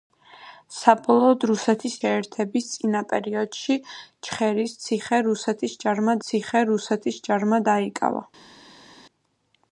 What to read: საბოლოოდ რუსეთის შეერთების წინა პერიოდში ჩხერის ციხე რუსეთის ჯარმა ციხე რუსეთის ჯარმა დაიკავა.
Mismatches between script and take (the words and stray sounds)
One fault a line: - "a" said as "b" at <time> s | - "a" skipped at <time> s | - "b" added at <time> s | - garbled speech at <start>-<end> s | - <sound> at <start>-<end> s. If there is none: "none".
none